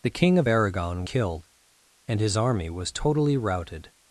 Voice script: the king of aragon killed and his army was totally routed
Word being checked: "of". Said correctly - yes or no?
yes